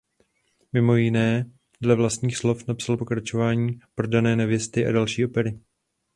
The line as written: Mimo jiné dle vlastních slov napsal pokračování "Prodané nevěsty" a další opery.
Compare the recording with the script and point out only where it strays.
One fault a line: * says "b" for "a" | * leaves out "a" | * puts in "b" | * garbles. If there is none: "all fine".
all fine